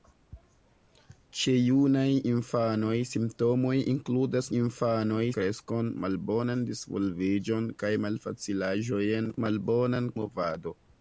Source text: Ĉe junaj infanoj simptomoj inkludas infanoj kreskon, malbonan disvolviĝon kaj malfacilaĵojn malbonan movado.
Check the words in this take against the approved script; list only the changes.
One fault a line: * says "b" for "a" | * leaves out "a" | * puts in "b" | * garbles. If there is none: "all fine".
all fine